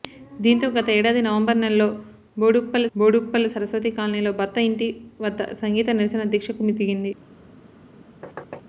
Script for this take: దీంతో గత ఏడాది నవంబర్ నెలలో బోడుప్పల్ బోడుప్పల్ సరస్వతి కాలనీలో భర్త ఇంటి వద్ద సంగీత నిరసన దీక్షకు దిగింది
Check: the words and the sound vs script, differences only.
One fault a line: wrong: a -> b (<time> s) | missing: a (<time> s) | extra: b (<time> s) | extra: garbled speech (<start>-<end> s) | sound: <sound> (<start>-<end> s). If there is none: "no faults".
sound: thud (8.2-8.6 s)